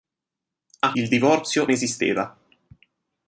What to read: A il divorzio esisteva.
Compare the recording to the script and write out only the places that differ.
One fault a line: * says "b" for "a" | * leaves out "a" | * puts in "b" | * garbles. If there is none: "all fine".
all fine